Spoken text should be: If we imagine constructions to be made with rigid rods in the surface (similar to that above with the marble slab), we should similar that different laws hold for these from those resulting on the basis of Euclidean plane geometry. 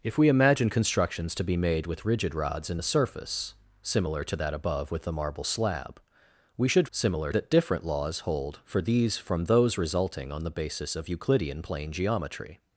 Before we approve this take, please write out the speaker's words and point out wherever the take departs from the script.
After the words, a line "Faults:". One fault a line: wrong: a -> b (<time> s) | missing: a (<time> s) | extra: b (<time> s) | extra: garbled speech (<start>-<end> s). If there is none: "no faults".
If we imagine constructions to be made with rigid rods in the surface (similar to that above with the marble slab), we should similar that different laws hold for these from those resulting on the basis of Euclidean plane geometry.
Faults:
no faults